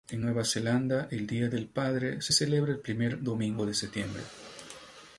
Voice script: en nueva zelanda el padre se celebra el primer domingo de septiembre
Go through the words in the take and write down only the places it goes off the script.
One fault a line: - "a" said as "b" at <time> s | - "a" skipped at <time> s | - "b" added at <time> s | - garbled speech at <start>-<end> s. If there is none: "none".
- "día del" added at 1.3 s